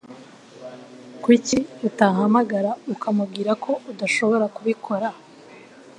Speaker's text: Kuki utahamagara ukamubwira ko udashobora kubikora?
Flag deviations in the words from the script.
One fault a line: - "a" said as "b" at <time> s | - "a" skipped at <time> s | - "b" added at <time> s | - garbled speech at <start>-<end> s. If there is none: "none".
none